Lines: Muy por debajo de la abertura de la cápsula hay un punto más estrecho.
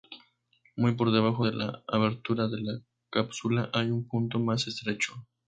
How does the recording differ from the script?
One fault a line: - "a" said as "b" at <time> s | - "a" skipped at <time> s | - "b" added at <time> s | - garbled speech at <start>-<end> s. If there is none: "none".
none